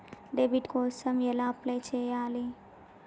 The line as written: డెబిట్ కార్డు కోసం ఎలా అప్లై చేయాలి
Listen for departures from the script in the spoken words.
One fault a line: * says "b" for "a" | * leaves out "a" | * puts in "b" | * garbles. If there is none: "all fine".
* leaves out "కార్డు"